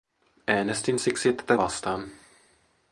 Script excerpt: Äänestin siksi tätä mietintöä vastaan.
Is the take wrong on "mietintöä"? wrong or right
wrong